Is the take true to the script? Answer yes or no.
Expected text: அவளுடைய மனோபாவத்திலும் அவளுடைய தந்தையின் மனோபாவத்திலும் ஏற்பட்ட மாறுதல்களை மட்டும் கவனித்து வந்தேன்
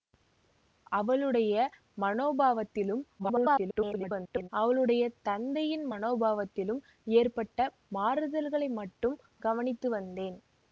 no